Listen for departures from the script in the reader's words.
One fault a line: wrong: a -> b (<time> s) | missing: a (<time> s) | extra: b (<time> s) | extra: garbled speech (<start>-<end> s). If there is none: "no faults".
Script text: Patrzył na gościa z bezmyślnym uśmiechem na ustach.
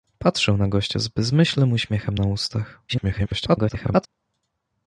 extra: garbled speech (2.9-4.1 s)